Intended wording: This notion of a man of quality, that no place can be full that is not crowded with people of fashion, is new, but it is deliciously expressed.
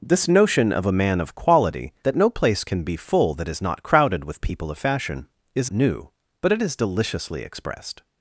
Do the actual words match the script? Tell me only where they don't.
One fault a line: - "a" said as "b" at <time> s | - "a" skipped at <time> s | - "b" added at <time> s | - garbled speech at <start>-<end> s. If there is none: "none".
none